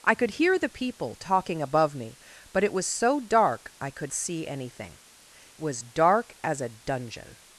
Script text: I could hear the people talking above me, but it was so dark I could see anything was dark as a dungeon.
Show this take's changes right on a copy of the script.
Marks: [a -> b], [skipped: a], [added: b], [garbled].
I could hear the people talking above me, but it was so dark I could see anything was dark as a dungeon.